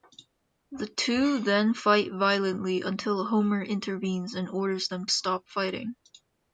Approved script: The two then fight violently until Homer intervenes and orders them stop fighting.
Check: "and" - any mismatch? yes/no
no